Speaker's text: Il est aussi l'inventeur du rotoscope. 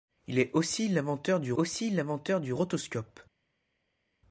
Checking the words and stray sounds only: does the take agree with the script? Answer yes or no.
no